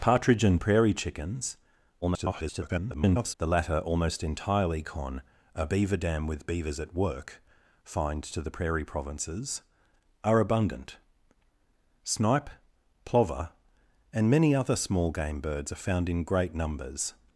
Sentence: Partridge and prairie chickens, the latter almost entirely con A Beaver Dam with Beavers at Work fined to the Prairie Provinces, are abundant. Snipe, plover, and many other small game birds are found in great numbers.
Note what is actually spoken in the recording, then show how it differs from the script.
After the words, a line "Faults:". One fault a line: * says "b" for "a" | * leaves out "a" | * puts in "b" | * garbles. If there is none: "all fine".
Partridge and prairie chickens, [garbled] the latter almost entirely con A Beaver Dam with Beavers at Work fined to the Prairie Provinces, are abundant. Snipe, plover, and many other small game birds are found in great numbers.
Faults:
* garbles